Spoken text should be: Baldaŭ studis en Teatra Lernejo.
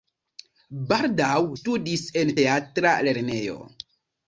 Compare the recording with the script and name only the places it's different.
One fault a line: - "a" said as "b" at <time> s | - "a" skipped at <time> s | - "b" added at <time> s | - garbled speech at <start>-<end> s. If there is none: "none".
none